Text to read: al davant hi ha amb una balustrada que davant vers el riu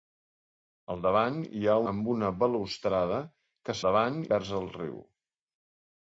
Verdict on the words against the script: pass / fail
pass